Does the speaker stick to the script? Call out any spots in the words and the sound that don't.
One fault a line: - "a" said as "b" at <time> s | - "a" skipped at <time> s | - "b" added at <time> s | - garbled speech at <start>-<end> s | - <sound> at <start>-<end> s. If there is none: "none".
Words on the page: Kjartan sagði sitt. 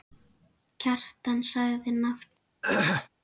- "nafn" added at 2.0 s
- throat clearing at 2.6-3.1 s